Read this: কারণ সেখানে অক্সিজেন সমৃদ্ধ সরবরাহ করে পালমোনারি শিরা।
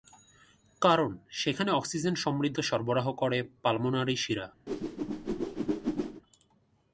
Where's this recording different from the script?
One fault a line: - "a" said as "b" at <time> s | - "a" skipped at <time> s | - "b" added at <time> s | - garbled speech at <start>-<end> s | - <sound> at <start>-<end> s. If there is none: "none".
- whoosh at 4.7-6.2 s